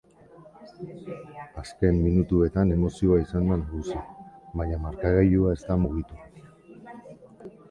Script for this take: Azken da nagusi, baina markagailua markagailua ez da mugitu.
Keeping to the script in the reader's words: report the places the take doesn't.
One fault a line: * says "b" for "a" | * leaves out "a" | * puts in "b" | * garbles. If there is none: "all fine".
* puts in "minutuetan emozioa izan"
* leaves out "markagailua"